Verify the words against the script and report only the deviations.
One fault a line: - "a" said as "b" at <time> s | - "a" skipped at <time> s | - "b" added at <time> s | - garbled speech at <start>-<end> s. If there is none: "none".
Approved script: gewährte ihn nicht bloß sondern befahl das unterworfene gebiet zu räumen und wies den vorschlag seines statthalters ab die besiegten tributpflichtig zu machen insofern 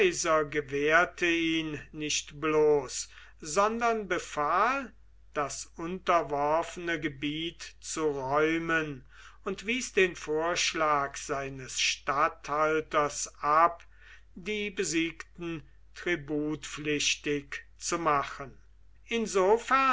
none